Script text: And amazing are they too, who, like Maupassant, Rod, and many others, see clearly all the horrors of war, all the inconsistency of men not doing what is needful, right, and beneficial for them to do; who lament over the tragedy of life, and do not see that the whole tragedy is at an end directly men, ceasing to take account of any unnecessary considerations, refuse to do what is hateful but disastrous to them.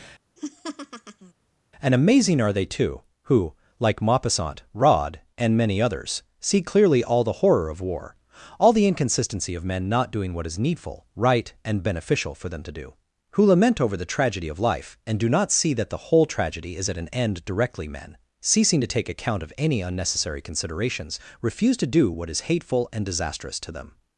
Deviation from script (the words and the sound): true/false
true